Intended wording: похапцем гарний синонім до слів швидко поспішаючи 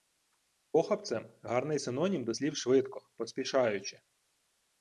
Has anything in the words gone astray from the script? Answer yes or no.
no